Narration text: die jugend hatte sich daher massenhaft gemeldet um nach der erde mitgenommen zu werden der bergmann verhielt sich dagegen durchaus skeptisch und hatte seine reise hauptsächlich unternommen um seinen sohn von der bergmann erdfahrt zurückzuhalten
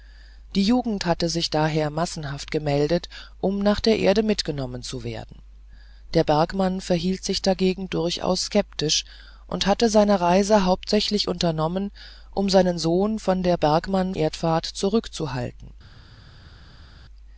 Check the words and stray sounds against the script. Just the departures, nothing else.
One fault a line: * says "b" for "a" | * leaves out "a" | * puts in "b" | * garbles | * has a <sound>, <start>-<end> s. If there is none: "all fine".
all fine